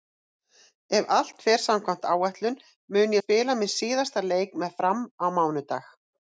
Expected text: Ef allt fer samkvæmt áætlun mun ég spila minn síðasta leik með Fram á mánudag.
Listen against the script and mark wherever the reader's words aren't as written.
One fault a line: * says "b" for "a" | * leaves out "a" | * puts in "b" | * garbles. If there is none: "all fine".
* leaves out "ég"